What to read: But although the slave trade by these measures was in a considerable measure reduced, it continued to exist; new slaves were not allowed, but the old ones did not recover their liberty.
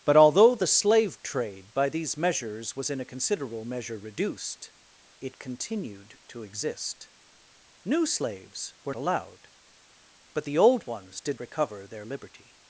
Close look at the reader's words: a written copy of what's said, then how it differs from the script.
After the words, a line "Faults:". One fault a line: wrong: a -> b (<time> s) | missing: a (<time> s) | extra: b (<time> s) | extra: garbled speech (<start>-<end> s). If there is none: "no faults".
But although the slave trade by these measures was in a considerable measure reduced, it continued to exist; new slaves were allowed, but the old ones did recover their liberty.
Faults:
missing: not (8.9 s)
missing: not (11.4 s)